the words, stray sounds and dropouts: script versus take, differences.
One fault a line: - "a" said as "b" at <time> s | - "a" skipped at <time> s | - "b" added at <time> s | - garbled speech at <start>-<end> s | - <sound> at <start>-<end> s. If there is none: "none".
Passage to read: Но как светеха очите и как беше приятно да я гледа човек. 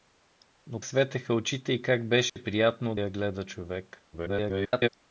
- "как" skipped at 0.8 s
- dropout at 2.3-2.4 s
- "да" skipped at 2.9 s
- garbled speech at 4.1-4.9 s